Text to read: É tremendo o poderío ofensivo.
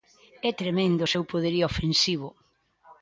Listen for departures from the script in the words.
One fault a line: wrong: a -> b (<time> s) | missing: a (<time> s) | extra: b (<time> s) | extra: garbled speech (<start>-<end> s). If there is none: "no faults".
extra: seu (1.1 s)